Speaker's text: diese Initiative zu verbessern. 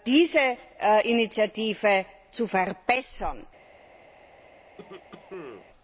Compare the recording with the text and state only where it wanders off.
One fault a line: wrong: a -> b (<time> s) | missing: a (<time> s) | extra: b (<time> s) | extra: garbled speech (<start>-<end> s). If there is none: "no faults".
no faults